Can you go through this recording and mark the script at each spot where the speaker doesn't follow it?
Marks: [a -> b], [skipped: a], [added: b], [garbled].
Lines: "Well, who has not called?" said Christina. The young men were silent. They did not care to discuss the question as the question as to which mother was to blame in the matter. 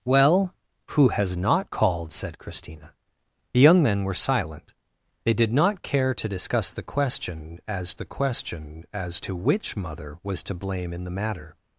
"Well, who has not called?" said Christina. The young men were silent. They did not care to discuss the question as the question as to which mother was to blame in the matter.